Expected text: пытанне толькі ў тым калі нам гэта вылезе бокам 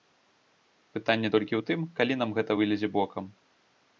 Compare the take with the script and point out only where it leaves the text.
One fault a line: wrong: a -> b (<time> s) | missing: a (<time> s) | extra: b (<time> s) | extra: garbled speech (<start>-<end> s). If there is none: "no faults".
no faults